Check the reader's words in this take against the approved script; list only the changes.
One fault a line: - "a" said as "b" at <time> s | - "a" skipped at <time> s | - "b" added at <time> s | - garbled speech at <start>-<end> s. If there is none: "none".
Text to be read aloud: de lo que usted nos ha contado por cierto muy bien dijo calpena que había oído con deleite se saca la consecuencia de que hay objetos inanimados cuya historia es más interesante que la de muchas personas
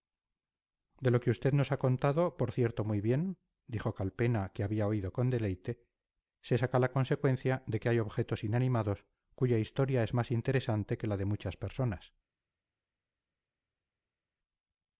none